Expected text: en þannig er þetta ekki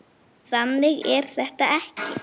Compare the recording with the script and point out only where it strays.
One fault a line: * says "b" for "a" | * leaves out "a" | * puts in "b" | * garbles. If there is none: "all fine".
all fine